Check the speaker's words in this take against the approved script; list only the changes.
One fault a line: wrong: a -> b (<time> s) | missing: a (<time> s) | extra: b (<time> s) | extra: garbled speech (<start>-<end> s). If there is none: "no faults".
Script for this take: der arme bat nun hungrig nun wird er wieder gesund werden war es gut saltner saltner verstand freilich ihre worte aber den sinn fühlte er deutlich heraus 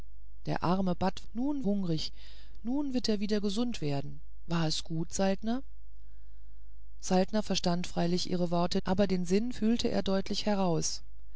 no faults